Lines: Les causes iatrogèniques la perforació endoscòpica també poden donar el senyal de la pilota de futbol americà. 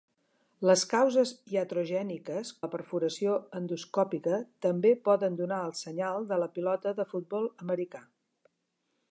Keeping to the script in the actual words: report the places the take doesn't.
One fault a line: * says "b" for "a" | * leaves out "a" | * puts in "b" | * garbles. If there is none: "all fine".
all fine